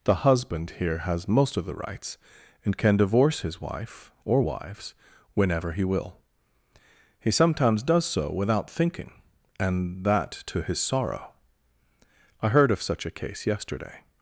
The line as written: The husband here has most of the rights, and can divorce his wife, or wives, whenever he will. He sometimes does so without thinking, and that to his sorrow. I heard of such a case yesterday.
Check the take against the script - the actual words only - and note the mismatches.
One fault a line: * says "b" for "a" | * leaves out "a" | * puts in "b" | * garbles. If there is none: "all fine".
all fine